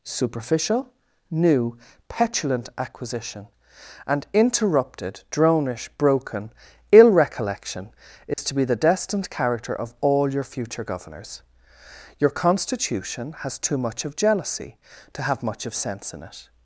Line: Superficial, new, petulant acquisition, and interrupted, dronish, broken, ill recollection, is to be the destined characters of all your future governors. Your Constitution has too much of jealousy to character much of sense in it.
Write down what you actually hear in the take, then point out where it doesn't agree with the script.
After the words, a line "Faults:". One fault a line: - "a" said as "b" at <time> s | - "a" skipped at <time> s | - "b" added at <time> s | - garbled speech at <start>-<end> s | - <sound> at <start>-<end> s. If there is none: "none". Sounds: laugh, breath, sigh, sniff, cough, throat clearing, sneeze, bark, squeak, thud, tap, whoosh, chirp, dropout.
Superficial, new, petulant acquisition, and interrupted, dronish, broken, ill recollection, is to be the destined character of all your future governors. Your Constitution has too much of jealousy to have much of sense in it.
Faults:
- dropout at 8.3-8.4 s
- "characters" said as "character" at 9.3 s
- "character" said as "have" at 15.2 s